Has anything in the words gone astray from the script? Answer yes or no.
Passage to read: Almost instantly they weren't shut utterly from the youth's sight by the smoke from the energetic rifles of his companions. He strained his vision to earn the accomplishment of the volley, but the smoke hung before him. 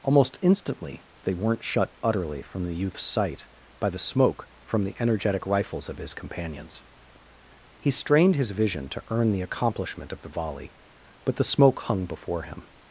no